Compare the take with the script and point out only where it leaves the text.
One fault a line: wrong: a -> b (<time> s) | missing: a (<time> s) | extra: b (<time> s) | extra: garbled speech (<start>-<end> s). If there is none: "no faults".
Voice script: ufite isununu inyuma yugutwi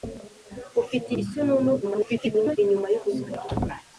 extra: garbled speech (1.8-2.6 s)